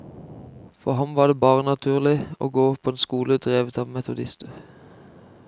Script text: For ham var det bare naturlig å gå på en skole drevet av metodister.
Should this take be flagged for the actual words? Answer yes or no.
no